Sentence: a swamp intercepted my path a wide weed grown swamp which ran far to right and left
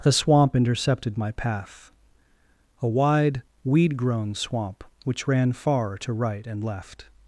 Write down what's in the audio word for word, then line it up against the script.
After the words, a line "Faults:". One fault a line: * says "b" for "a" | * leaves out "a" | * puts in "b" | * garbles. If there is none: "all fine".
the swamp intercepted my path a wide weed grown swamp which ran far to right and left
Faults:
* says "the" for "a"